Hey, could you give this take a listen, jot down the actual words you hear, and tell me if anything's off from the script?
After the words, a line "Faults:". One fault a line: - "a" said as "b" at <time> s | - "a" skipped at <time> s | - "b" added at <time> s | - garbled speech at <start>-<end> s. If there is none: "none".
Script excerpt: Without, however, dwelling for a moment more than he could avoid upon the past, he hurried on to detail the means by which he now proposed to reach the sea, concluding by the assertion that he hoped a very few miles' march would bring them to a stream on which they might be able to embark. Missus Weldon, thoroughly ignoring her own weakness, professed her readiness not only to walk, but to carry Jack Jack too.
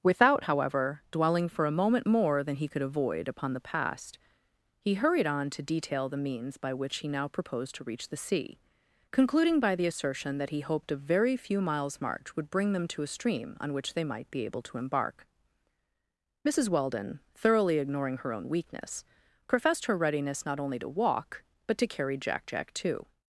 Without, however, dwelling for a moment more than he could avoid upon the past, he hurried on to detail the means by which he now proposed to reach the sea, concluding by the assertion that he hoped a very few miles' march would bring them to a stream on which they might be able to embark. Missus Weldon, thoroughly ignoring her own weakness, professed her readiness not only to walk, but to carry Jack Jack too.
Faults:
none